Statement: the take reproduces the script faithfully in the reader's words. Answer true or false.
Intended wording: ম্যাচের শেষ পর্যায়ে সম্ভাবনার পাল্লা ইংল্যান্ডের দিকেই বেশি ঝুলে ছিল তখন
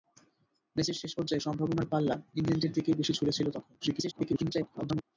false